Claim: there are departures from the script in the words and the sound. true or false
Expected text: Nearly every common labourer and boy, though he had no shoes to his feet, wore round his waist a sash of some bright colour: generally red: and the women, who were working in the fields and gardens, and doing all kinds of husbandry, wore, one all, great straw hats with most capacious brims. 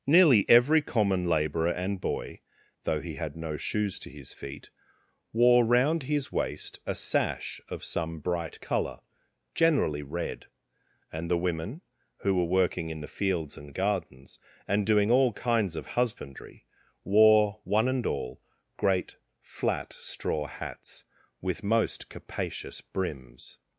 true